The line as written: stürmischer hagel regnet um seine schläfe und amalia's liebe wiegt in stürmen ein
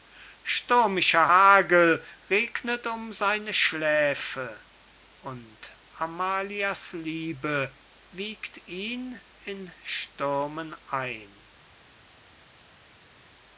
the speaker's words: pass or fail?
fail